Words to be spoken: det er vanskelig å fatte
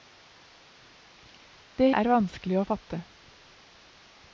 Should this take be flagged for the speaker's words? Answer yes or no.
no